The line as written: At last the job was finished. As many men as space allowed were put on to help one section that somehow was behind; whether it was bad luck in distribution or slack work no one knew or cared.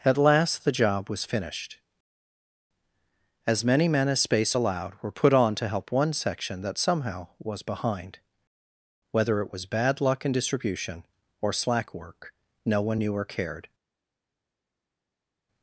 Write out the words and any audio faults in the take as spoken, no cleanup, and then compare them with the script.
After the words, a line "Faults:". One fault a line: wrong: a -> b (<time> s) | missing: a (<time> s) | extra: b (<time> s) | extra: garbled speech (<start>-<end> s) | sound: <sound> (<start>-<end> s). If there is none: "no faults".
At last the job was finished. As many men as space allowed were put on to help one section that somehow was behind; whether it was bad luck in distribution or slack work no one knew or cared.
Faults:
no faults